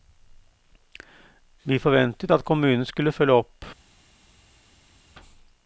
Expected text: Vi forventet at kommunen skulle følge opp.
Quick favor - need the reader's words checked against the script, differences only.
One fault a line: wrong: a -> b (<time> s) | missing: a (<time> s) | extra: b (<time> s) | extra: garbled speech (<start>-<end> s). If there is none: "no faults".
no faults